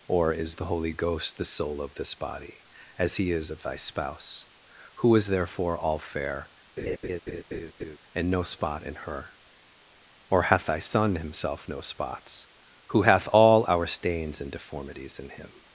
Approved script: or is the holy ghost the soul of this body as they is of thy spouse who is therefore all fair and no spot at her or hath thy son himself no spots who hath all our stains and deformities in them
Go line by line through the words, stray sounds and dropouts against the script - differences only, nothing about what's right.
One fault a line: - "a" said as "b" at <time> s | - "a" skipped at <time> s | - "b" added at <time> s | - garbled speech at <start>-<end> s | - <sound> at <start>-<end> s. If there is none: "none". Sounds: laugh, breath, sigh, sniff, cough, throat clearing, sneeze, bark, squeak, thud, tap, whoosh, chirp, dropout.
- "they" said as "he" at 3.2 s
- laugh at 6.8-8.0 s
- "at" said as "in" at 8.8 s
- "them" said as "him" at 15.3 s